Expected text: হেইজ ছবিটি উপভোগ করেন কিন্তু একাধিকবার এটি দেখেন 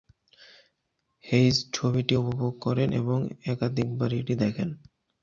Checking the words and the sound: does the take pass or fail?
fail